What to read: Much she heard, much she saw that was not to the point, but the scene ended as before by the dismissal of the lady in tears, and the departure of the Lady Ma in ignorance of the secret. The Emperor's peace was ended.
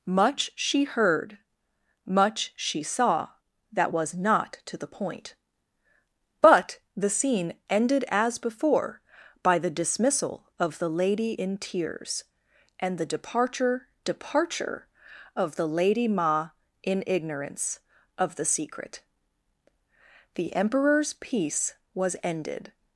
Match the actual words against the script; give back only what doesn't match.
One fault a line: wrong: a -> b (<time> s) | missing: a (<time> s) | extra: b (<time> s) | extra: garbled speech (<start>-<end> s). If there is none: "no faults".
extra: departure (14.0 s)